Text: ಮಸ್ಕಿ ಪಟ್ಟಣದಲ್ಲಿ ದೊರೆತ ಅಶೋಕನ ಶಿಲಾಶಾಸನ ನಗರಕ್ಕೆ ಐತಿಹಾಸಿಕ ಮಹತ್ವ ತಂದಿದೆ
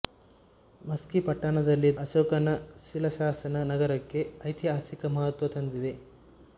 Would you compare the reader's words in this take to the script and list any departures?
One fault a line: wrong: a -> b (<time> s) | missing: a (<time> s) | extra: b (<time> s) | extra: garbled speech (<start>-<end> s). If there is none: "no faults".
missing: ದೊರೆತ (1.9 s)